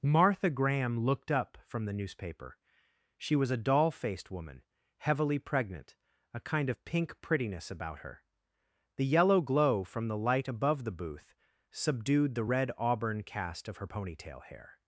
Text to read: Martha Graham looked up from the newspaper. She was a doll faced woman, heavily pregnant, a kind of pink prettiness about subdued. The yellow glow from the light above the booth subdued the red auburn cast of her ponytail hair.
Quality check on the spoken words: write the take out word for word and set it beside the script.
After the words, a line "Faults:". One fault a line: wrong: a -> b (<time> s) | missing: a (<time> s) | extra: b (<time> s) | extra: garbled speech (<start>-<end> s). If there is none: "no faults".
Martha Graham looked up from the newspaper. She was a doll faced woman, heavily pregnant, a kind of pink prettiness about her. The yellow glow from the light above the booth subdued the red auburn cast of her ponytail hair.
Faults:
wrong: subdued -> her (8.0 s)